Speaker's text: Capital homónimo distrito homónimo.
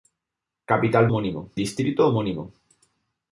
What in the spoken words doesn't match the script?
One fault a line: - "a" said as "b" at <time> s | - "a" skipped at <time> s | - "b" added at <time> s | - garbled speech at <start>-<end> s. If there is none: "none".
none